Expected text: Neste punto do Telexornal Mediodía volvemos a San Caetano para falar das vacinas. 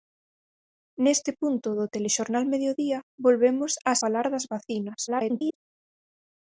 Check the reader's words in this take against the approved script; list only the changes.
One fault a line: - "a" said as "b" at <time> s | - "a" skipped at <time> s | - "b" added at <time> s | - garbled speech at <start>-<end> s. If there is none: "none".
- "San Caetano para" skipped at 3.9 s
- garbled speech at 5.1-5.5 s